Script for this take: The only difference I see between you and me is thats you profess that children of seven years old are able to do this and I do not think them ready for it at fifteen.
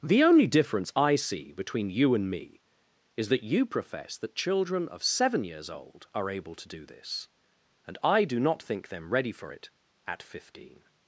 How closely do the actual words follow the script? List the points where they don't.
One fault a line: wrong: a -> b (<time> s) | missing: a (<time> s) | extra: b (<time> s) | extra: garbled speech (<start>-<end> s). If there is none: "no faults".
wrong: thats -> that (3.3 s)